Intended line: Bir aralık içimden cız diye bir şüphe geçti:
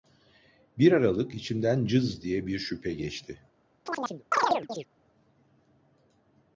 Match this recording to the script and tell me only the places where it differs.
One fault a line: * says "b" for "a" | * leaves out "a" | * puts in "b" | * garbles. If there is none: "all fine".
all fine